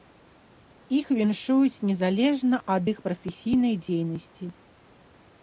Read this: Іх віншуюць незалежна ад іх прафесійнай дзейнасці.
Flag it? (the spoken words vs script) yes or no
no